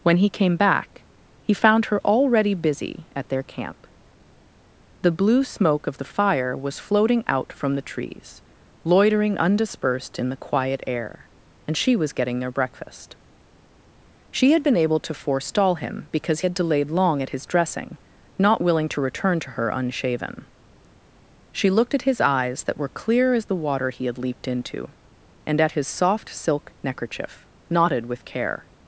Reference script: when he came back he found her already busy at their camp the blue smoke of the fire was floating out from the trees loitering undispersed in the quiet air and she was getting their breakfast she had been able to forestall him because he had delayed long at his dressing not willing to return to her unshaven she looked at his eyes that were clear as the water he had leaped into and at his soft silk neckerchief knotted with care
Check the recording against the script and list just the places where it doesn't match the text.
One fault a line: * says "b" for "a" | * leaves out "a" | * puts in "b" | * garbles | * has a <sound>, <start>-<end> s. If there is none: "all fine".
* leaves out "he"